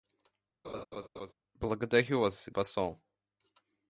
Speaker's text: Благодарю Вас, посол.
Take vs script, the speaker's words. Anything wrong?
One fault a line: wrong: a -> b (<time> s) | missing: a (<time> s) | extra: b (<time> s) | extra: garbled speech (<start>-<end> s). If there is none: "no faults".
no faults